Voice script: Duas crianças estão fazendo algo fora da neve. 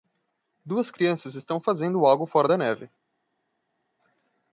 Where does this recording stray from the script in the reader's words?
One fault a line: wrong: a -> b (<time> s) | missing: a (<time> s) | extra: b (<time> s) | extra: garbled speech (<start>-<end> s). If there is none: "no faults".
no faults